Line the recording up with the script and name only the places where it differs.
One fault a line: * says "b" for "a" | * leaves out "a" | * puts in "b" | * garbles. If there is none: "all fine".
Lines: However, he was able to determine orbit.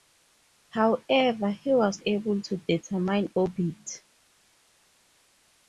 all fine